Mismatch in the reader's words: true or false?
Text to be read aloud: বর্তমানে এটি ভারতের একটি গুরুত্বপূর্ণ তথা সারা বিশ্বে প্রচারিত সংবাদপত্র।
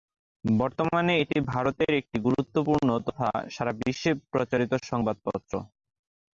false